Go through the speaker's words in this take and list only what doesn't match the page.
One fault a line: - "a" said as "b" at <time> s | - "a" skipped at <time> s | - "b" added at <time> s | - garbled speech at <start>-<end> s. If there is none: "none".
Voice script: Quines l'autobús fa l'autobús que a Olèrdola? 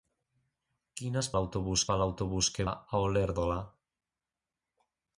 none